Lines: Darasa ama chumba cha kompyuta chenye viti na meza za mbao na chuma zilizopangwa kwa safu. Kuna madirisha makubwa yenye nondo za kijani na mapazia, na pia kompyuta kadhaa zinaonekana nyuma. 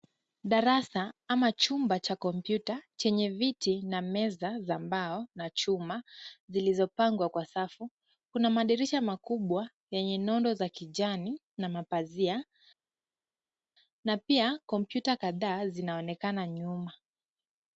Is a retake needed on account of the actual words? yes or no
no